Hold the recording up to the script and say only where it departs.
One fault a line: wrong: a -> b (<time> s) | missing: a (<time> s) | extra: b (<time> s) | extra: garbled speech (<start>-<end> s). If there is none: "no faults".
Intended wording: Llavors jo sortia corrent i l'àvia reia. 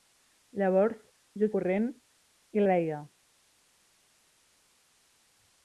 missing: sortia (1.5 s)
missing: l'àvia (2.7 s)